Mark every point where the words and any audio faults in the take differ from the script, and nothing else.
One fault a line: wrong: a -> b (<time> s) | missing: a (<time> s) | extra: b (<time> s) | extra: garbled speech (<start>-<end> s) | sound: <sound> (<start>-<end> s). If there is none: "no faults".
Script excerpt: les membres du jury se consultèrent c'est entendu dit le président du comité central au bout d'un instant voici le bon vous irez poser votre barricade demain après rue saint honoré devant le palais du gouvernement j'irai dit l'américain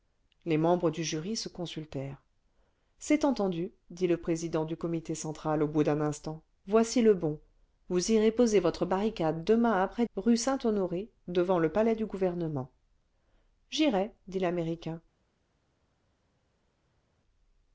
no faults